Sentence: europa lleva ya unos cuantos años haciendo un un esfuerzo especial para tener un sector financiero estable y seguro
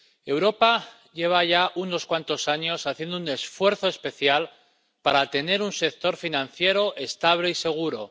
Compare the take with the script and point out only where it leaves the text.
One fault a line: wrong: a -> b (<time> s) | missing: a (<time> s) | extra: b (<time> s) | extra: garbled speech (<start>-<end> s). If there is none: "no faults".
missing: un (3.3 s)